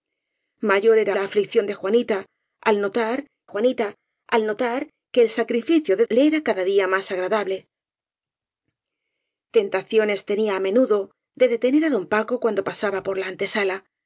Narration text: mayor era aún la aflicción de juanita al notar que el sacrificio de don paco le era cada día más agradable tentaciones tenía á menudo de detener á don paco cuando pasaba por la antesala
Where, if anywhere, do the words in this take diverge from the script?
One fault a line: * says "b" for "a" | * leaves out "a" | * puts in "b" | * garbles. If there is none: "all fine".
* leaves out "aún"
* puts in "juanita al notar"
* leaves out "don paco"